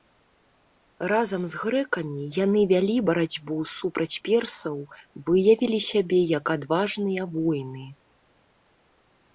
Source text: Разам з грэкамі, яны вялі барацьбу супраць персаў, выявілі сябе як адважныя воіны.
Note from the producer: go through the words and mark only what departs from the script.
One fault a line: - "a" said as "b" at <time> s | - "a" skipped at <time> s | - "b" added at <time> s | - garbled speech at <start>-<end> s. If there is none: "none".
none